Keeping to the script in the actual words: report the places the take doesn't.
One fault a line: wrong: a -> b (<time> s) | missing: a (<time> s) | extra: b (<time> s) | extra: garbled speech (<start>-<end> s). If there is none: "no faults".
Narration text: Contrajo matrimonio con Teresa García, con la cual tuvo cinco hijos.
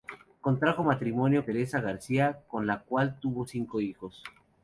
missing: con (1.5 s)